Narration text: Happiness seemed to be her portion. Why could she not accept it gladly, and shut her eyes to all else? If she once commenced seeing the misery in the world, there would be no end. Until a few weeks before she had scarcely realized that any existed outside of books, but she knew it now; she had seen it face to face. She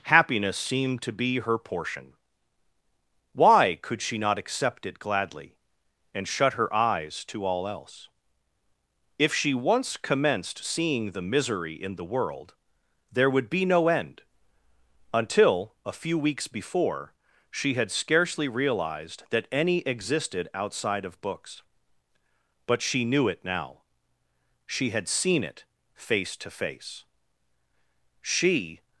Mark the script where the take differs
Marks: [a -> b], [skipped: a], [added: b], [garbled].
Happiness seemed to be her portion. Why could she not accept it gladly, and shut her eyes to all else? If she once commenced seeing the misery in the world, there would be no end. Until a few weeks before she had scarcely realized that any existed outside of books, but she knew it now; she had seen it face to face. She